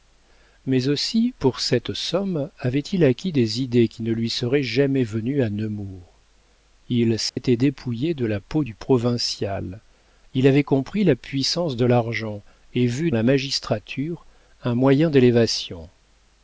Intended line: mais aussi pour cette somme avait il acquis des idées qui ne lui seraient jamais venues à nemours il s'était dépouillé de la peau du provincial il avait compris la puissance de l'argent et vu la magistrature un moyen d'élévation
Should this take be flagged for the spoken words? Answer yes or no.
no